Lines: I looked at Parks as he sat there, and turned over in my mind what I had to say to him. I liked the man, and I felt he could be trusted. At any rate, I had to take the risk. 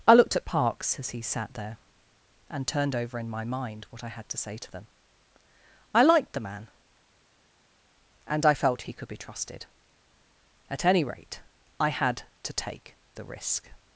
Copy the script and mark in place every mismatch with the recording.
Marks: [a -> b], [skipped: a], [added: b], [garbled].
I looked at Parks as he sat there, and turned over in my mind what I had to say to [him. -> them] I liked the man, and I felt he could be trusted. At any rate, I had to take the risk.